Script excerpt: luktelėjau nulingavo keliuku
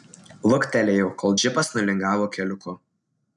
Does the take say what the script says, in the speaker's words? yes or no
no